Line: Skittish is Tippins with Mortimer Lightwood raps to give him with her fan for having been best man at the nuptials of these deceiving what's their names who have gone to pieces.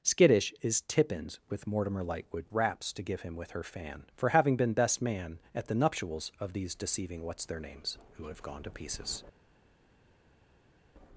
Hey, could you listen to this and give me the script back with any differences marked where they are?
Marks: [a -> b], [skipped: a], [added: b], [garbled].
Skittish is Tippins with Mortimer Lightwood raps to give him with her fan for having been best man at the nuptials of these deceiving what's their names who have gone to pieces.